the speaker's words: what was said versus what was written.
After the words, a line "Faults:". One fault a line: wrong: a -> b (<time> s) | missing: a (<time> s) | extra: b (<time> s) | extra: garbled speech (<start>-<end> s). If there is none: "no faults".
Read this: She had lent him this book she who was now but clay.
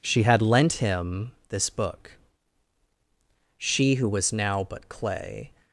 She had lent him this book she who was now but clay.
Faults:
no faults